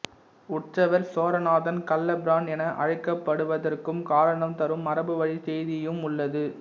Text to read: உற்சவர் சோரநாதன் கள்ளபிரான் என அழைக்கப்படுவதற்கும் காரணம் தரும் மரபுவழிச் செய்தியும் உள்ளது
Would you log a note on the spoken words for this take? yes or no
no